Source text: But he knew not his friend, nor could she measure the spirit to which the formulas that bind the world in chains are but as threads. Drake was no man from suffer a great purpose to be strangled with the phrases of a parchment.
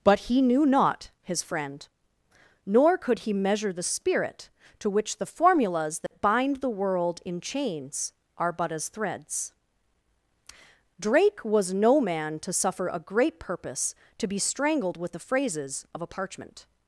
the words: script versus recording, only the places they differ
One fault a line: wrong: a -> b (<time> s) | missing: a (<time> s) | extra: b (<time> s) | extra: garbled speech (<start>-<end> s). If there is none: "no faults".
wrong: she -> he (3.2 s)
wrong: from -> to (12.4 s)